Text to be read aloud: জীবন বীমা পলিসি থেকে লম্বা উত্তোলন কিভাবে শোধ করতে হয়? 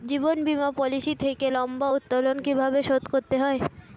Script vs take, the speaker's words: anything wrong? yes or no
no